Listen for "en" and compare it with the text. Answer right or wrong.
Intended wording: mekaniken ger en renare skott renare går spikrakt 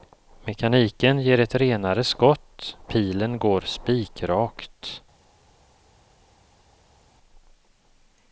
wrong